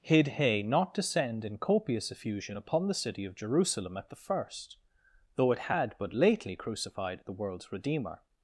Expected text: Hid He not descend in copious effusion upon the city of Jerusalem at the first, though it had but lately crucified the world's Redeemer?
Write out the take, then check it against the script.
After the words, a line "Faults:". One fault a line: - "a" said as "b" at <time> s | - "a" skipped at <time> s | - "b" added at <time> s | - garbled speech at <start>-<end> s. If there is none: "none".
Hid He not descend in copious effusion upon the city of Jerusalem at the first, though it had but lately crucified the world's Redeemer?
Faults:
none